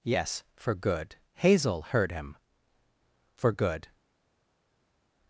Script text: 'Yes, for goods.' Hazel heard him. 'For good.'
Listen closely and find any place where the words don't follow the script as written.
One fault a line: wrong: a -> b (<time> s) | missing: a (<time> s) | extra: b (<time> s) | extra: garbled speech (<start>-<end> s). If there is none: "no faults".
wrong: goods -> good (0.7 s)